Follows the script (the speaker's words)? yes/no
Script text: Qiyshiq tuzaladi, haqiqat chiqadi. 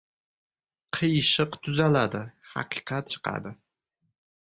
yes